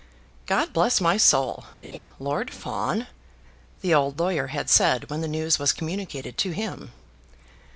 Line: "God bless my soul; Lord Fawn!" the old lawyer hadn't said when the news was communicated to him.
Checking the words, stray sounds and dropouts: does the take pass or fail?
fail